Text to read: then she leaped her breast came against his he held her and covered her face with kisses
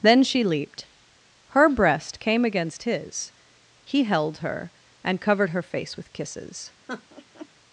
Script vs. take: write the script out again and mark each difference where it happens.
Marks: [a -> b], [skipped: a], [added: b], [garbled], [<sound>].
then she leaped her breast came against his he held her and covered her face with kisses [laugh]